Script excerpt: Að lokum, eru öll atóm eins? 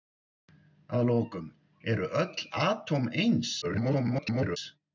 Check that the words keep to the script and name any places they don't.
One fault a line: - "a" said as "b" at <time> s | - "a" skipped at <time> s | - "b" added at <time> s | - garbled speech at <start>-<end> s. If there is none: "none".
- garbled speech at 3.6-4.6 s